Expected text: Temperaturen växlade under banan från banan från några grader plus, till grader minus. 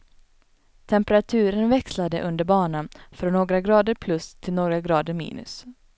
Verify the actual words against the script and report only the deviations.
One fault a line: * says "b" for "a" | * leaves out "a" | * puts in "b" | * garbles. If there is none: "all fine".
* leaves out "banan från"
* puts in "några"